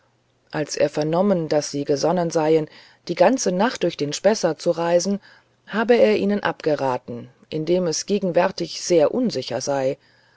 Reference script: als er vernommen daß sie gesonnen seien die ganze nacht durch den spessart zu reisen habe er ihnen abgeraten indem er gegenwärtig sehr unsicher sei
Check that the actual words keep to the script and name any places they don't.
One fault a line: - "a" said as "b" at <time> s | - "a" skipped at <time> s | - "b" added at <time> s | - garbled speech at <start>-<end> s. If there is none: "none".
- "er" said as "es" at 7.8 s